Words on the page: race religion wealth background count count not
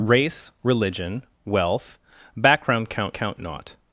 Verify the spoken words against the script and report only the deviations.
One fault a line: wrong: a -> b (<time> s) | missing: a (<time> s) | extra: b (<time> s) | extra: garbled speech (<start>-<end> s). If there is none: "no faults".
no faults